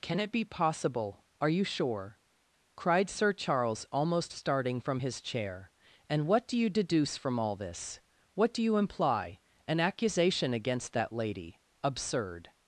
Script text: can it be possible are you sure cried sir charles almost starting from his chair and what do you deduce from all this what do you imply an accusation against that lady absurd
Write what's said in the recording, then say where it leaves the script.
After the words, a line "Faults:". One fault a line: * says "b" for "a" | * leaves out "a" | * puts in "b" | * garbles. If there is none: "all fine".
can it be possible are you sure cried sir charles almost starting from his chair and what do you deduce from all this what do you imply an accusation against that lady absurd
Faults:
all fine